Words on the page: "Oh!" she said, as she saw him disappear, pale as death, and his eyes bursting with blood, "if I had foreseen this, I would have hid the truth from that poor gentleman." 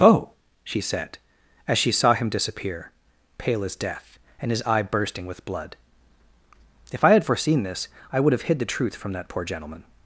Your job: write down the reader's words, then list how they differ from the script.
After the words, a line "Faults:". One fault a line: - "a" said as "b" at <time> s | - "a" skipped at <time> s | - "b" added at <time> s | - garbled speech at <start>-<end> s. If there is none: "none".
"Oh!" she said, as she saw him disappear, pale as death, and his eye bursting with blood, "if I had foreseen this, I would have hid the truth from that poor gentleman."
Faults:
- "eyes" said as "eye" at 4.6 s